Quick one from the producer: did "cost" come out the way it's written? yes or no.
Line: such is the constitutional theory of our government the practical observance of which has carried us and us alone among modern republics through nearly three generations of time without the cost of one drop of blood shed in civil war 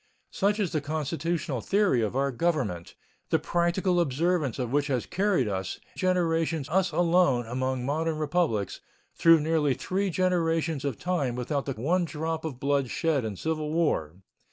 no